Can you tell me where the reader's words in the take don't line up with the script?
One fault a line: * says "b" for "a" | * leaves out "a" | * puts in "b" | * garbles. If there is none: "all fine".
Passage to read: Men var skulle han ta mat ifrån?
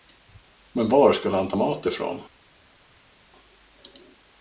all fine